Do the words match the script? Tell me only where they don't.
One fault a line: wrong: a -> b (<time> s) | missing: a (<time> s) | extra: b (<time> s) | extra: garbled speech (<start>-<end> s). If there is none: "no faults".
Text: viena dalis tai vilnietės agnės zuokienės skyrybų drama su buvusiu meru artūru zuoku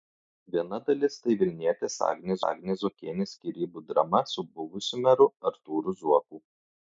extra: agnės (2.5 s)